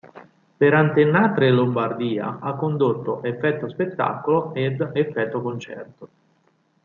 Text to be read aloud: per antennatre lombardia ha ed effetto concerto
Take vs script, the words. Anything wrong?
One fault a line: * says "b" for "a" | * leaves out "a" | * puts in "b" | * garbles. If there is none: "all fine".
* puts in "condotto effetto spettacolo"